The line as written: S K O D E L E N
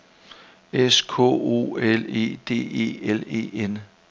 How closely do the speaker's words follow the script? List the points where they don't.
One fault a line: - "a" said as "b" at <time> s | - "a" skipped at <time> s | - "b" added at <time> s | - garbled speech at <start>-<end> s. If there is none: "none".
- "L E" added at 1.8 s